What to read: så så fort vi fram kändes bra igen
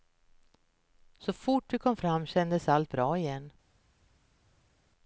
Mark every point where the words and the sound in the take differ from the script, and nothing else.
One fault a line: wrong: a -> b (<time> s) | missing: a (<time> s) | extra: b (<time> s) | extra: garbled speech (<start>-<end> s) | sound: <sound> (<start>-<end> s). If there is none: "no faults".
missing: så (1.3 s)
extra: kom (1.8 s)
extra: allt (2.7 s)